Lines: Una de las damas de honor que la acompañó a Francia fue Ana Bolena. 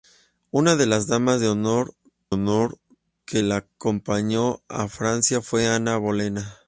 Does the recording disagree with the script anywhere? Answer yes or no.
yes